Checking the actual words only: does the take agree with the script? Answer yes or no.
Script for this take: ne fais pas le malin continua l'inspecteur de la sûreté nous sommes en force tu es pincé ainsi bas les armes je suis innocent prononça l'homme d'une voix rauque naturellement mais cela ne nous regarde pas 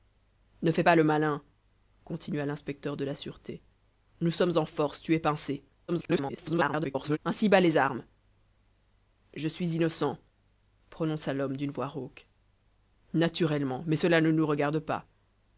no